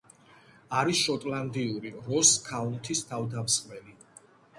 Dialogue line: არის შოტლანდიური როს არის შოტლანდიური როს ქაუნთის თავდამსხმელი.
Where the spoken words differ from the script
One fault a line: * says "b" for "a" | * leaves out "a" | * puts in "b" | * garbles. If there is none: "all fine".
* leaves out "არის შოტლანდიური როს"